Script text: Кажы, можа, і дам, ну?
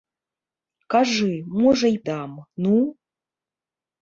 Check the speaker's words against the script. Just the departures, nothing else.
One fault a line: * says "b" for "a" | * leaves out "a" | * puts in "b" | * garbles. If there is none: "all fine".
all fine